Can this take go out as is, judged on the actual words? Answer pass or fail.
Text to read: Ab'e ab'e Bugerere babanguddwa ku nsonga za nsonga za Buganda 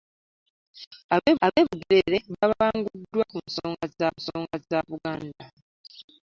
pass